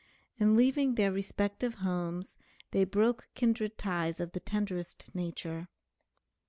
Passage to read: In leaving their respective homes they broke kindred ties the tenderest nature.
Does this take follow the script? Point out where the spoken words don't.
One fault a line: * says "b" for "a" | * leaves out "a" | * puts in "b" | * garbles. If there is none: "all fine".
* puts in "of"